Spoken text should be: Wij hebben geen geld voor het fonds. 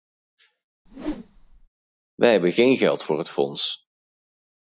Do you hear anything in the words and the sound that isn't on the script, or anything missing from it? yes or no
yes